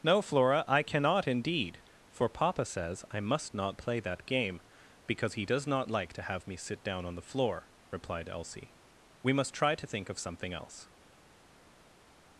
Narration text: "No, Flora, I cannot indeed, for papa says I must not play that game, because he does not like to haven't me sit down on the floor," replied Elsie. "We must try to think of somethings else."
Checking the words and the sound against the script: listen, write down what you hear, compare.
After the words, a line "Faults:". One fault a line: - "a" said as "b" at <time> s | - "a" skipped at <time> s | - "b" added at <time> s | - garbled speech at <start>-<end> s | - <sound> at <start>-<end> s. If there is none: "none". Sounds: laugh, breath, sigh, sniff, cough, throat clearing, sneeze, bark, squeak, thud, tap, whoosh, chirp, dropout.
"No, Flora, I cannot indeed, for papa says I must not play that game, because he does not like to have me sit down on the floor," replied Elsie. "We must try to think of something else."
Faults:
- "haven't" said as "have" at 6.2 s
- "somethings" said as "something" at 10.2 s